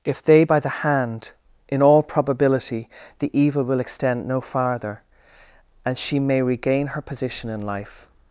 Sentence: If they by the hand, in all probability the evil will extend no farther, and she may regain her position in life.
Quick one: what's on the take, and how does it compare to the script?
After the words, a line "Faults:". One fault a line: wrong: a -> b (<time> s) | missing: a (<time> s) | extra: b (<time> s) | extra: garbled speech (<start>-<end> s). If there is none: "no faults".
If they by the hand, in all probability the evil will extend no farther, and she may regain her position in life.
Faults:
no faults